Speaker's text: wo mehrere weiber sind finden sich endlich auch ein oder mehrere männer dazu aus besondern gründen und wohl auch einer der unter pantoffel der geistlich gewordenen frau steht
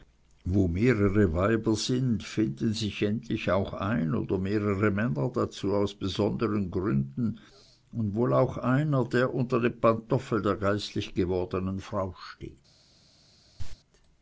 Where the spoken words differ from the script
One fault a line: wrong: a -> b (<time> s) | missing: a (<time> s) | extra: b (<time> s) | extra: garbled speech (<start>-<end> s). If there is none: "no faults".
extra: dem (9.6 s)